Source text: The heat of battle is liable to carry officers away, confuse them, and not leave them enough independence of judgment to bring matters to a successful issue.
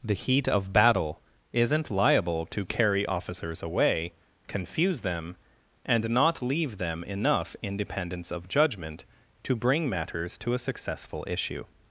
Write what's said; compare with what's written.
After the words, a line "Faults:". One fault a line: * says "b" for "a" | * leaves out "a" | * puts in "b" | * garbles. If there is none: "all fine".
The heat of battle isn't liable to carry officers away, confuse them, and not leave them enough independence of judgment to bring matters to a successful issue.
Faults:
* says "isn't" for "is"